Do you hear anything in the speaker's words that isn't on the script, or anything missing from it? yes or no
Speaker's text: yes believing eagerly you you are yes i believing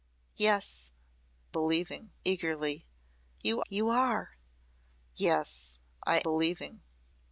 no